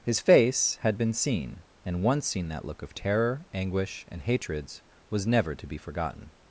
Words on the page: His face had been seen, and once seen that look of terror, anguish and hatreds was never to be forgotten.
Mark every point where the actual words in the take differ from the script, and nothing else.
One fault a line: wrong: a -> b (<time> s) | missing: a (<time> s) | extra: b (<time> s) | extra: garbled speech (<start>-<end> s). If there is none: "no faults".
no faults